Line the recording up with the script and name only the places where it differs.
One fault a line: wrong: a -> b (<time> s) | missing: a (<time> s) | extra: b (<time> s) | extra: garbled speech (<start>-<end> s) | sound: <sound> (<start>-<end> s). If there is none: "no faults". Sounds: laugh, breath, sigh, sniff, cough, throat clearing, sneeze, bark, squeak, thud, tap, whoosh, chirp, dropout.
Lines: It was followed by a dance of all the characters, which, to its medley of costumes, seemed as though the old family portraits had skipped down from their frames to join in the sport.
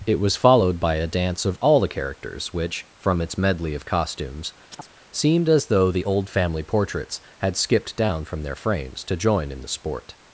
wrong: to -> from (3.0 s)
sound: chirp (4.7-4.9 s)